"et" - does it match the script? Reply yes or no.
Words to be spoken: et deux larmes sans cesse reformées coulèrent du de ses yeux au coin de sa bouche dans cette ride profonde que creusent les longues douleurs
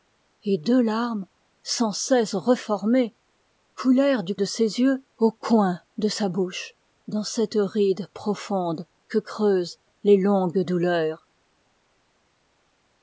yes